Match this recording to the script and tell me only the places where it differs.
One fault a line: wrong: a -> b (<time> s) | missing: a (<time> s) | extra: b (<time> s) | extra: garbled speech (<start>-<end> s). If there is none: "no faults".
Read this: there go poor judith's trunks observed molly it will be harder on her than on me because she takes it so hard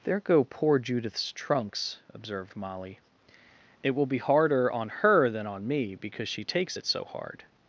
no faults